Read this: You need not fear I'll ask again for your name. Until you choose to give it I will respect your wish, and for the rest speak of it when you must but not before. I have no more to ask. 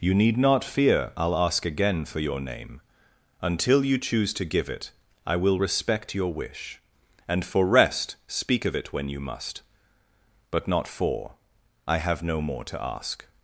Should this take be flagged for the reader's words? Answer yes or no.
yes